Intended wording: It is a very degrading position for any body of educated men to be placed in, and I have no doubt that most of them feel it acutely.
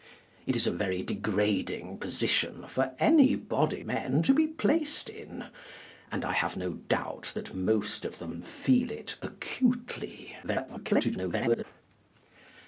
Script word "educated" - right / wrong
wrong